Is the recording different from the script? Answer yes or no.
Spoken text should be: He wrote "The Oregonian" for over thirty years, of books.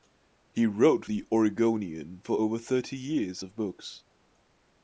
no